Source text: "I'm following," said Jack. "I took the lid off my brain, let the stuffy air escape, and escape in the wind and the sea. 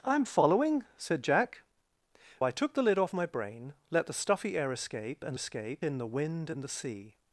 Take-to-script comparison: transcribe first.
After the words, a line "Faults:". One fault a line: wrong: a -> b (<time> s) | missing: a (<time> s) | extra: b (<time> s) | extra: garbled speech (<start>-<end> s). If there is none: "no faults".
"I'm following," said Jack. "I took the lid off my brain, let the stuffy air escape, and escape in the wind and the sea.
Faults:
no faults